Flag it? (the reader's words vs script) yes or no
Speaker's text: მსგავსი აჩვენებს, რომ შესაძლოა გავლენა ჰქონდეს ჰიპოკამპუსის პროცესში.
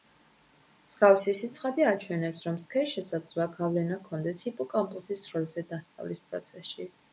yes